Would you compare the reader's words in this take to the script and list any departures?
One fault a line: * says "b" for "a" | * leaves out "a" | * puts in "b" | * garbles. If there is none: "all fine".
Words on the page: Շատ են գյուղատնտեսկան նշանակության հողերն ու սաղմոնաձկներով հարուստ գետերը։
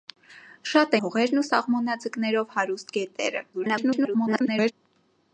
* leaves out "են գյուղատնտեսկան նշանակության"
* garbles